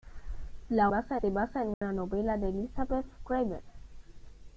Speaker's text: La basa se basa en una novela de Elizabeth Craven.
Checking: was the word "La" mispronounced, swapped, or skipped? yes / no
no